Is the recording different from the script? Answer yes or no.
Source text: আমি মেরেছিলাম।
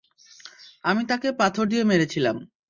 yes